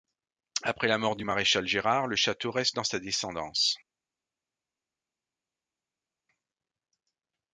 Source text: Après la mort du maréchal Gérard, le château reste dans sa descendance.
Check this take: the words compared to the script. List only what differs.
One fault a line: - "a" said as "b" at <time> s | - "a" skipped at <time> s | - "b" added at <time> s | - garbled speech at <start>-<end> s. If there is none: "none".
none